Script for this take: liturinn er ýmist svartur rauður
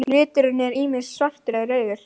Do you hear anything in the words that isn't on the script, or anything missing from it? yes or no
yes